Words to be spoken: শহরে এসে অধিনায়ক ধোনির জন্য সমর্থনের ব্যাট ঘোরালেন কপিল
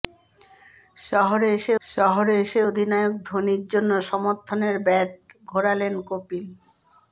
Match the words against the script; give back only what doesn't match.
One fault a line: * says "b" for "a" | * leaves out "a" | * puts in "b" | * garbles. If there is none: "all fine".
* puts in "শহরে এসে"